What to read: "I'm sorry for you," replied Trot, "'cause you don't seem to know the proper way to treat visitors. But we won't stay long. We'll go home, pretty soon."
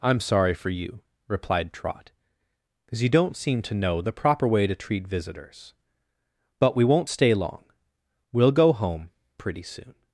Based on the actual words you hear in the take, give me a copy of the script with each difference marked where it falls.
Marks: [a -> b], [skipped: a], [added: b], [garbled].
"I'm sorry for you," replied Trot, "'cause you don't seem to know the proper way to treat visitors. But we won't stay long. We'll go home, pretty soon."